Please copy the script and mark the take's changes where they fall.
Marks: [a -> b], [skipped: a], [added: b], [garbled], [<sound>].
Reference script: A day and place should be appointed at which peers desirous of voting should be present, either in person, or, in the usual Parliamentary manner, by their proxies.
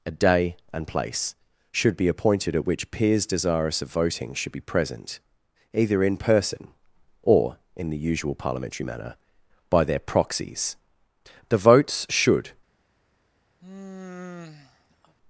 A day and place should be appointed at which peers desirous of voting should be present, either in person, or, in the usual Parliamentary manner, by their proxies. [added: The votes should] [sigh]